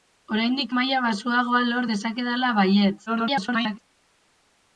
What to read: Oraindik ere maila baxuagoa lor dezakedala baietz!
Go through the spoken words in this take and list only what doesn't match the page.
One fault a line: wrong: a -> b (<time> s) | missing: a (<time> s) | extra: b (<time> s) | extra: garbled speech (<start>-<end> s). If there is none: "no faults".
missing: ere (0.7 s)
extra: garbled speech (3.1-3.8 s)